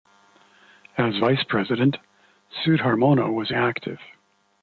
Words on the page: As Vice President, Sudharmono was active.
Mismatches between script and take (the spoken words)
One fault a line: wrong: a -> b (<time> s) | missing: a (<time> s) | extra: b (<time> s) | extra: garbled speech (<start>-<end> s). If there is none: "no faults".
no faults